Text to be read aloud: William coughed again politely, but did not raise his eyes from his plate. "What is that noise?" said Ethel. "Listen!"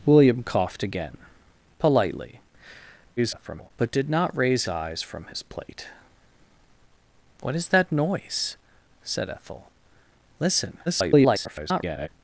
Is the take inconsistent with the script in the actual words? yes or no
yes